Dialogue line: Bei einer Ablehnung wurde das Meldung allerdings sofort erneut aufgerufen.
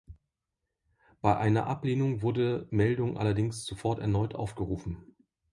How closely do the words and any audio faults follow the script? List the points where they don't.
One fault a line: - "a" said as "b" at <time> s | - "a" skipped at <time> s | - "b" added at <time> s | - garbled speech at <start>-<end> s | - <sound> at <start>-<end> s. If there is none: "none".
- "das" skipped at 2.7 s